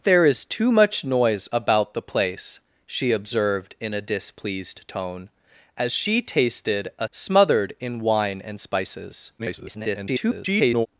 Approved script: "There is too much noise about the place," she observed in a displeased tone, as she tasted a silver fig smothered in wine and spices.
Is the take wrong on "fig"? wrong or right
wrong